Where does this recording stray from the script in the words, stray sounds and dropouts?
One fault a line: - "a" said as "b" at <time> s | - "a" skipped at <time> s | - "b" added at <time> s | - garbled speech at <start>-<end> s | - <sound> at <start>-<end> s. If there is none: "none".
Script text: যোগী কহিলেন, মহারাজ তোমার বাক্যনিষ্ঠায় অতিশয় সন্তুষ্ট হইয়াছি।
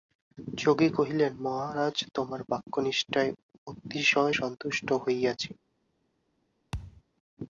- thud at 6.7-7.0 s